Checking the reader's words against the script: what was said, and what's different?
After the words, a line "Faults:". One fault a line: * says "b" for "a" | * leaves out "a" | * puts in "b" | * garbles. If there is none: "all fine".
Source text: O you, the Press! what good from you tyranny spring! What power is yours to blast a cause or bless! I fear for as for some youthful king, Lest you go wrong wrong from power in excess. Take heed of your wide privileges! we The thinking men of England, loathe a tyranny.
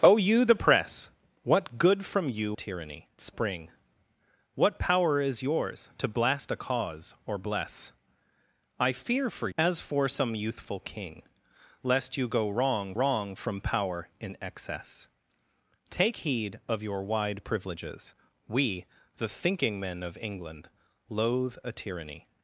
O you, the Press! what good from you tyranny spring! What power is yours to blast a cause or bless! I fear for as for some youthful king, Lest you go wrong wrong from power in excess. Take heed of your wide privileges! we The thinking men of England, loathe a tyranny.
Faults:
all fine